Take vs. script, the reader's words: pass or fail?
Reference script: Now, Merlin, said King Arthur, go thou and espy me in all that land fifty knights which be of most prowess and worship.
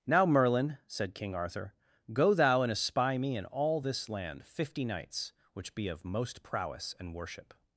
fail